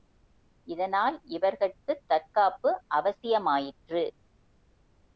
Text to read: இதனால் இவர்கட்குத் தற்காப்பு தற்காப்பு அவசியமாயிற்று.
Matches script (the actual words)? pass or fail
fail